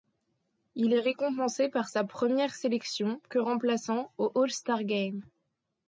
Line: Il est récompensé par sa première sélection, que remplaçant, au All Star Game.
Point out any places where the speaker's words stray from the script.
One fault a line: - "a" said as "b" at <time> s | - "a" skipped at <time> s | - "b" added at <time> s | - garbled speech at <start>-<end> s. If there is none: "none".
none